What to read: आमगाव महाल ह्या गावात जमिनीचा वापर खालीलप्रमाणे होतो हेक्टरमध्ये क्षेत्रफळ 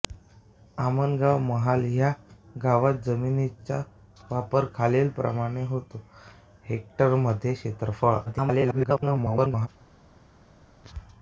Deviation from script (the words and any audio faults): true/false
true